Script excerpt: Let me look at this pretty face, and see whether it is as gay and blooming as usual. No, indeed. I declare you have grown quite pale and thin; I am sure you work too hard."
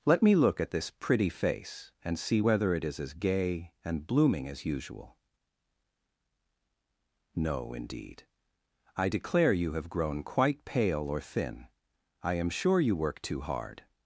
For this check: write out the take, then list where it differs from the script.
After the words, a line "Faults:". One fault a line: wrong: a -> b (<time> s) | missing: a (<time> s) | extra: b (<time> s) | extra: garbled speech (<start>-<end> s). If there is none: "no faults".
Let me look at this pretty face, and see whether it is as gay and blooming as usual. No, indeed. I declare you have grown quite pale or thin; I am sure you work too hard."
Faults:
wrong: and -> or (11.1 s)